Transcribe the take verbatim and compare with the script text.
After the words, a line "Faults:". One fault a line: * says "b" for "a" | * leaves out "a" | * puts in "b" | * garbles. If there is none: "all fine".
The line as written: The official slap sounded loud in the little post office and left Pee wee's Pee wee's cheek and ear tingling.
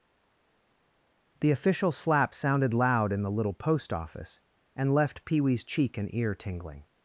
The official slap sounded loud in the little post office and left Pee wee's cheek and ear tingling.
Faults:
* leaves out "Pee wee's"